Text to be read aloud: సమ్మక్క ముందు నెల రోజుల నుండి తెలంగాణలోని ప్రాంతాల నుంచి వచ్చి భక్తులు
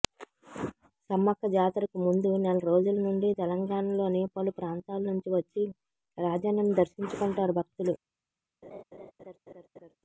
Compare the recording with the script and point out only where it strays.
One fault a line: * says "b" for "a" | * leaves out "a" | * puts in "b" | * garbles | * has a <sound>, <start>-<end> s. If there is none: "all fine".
* puts in "జాతరకు"
* puts in "పలు"
* puts in "రాజన్నను దర్శించుకుంటారు"
* has a laugh, 8.6-10.0 s